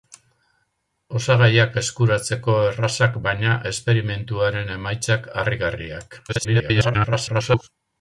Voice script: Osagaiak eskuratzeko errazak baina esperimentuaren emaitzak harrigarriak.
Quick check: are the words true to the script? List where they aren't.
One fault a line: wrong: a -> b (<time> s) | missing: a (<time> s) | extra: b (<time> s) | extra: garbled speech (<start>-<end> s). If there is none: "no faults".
extra: garbled speech (6.3-7.7 s)